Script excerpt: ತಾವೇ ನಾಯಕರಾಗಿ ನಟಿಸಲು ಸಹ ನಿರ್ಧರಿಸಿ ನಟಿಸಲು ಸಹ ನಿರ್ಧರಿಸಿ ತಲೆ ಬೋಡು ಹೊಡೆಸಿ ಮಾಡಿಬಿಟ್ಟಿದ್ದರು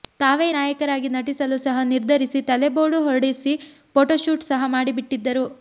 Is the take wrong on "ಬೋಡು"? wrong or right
wrong